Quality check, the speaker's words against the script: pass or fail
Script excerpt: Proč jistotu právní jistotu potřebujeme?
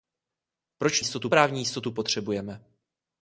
pass